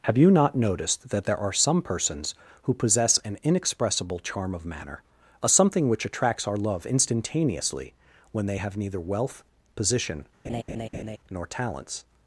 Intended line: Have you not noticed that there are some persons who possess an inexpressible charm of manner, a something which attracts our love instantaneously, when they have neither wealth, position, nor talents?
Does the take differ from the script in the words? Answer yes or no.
no